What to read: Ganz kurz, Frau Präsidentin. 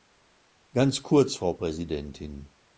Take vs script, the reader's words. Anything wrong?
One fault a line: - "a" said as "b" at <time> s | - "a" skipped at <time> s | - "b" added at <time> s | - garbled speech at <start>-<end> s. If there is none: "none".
none